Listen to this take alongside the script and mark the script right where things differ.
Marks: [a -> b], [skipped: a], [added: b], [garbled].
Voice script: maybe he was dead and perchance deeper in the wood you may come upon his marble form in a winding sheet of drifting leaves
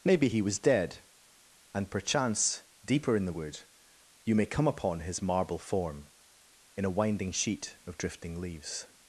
maybe he was dead and perchance deeper in the wood you may come upon his marble form in a winding sheet of drifting leaves